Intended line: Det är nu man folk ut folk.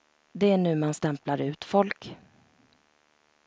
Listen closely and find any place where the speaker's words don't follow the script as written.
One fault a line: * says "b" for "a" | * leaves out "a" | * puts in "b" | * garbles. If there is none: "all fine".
* says "stämplar" for "folk"